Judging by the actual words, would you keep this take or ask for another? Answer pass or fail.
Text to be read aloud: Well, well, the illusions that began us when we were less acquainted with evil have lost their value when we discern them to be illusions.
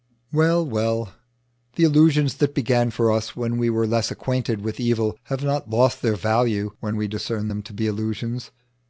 fail